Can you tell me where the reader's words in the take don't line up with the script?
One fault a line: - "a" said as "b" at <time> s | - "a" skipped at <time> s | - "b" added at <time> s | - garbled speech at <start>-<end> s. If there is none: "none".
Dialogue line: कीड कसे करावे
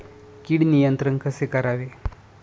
- "नियंत्रण" added at 0.6 s